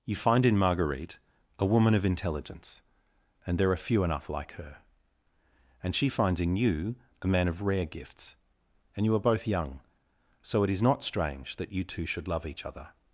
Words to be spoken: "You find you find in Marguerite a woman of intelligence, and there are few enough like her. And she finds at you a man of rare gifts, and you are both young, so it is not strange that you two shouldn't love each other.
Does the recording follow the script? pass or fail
fail